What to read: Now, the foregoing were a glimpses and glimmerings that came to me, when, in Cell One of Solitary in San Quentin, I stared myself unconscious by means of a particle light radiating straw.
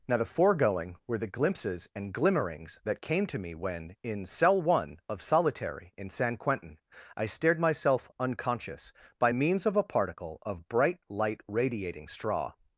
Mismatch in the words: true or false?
true